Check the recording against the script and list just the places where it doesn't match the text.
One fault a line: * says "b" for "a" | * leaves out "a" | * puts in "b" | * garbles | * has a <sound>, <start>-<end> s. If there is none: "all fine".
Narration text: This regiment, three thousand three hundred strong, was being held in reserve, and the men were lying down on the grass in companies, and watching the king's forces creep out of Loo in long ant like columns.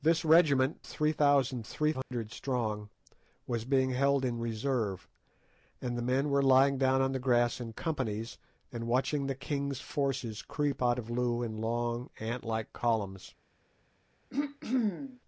* has a dropout, 2.0-2.1 s
* has a throat clearing, 14.3-15.2 s